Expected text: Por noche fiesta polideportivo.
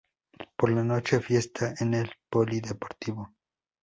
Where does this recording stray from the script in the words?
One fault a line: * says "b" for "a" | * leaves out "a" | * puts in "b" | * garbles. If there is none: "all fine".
* puts in "la"
* puts in "en el"